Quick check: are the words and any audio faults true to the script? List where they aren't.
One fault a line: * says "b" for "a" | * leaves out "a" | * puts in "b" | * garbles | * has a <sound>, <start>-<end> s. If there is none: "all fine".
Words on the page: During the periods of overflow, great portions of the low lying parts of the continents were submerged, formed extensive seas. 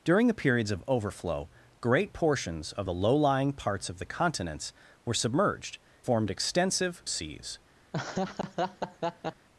* has a laugh, 7.9-9.5 s